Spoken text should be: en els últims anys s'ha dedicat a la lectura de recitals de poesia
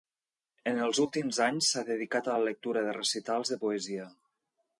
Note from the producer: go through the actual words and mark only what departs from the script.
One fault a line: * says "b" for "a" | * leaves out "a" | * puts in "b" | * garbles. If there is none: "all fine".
all fine